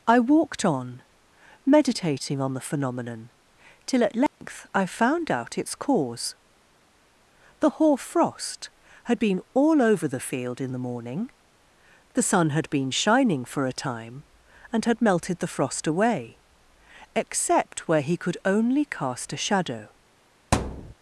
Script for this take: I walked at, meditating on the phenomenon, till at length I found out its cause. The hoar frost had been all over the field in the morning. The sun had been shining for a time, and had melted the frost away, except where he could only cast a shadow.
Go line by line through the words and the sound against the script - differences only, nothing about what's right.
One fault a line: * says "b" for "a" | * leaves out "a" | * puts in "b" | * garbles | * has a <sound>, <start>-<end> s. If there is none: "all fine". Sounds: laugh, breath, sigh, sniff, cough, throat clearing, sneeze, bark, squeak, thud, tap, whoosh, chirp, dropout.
* says "on" for "at"
* has a dropout, 4.3-4.4 s
* has a thud, 20.5-20.9 s